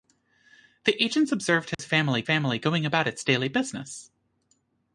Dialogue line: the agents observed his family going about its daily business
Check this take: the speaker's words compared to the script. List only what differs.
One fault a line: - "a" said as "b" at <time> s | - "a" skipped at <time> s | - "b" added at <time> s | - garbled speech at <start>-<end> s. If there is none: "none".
- "family" added at 2.2 s